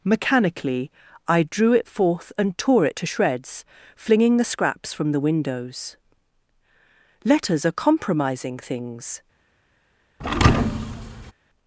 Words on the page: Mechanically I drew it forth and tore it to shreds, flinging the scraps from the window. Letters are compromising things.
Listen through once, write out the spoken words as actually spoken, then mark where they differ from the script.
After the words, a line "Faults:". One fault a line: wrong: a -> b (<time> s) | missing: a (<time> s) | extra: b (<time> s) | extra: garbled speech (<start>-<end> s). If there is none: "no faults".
Mechanically I drew it forth and tore it to shreds, flinging the scraps from the windows. Letters are compromising things.
Faults:
wrong: window -> windows (5.2 s)